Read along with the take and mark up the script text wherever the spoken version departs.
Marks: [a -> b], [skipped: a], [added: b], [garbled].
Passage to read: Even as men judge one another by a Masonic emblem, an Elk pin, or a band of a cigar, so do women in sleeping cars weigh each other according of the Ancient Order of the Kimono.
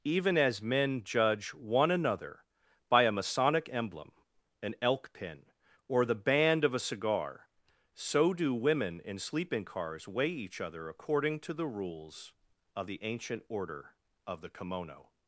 Even as men judge one another by a Masonic emblem, an Elk pin, or [a -> the] band of a cigar, so do women in sleeping cars weigh each other according [added: to the rules] of the Ancient Order of the Kimono.